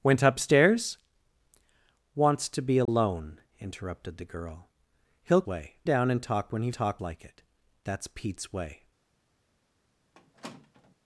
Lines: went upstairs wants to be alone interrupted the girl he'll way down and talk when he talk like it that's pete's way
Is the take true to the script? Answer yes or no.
yes